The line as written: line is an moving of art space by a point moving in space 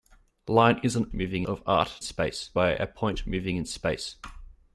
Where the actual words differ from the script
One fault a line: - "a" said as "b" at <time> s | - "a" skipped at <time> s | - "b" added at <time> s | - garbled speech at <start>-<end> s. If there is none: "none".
none